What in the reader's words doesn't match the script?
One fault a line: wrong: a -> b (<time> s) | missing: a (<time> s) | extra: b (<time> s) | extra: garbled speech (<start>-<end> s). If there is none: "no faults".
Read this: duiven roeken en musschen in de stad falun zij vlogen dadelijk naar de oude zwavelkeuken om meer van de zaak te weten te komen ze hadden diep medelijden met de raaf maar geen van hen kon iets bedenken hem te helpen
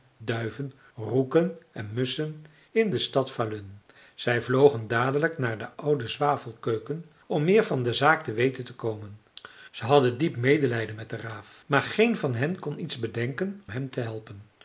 no faults